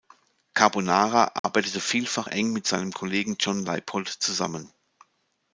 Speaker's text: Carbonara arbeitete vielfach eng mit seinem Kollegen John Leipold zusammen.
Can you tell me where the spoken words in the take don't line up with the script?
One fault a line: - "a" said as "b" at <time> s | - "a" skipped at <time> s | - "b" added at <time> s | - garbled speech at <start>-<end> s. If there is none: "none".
none